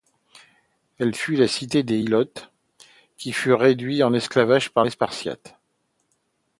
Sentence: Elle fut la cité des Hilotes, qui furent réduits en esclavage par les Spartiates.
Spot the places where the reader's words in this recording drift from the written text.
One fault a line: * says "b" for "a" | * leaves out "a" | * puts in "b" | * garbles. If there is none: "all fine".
all fine